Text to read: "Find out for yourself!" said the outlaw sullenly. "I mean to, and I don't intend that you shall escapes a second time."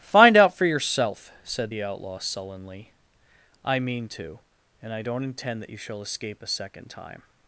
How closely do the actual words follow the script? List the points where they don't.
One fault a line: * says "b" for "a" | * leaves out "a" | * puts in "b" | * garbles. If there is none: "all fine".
* says "escape" for "escapes"